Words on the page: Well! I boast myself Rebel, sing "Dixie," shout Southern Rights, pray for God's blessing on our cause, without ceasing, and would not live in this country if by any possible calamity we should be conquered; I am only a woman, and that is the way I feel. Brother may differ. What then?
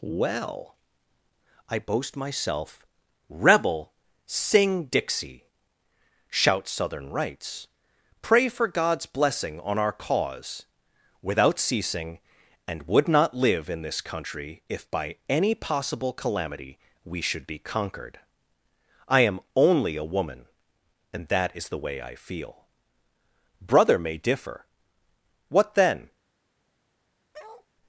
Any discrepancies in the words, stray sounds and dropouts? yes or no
yes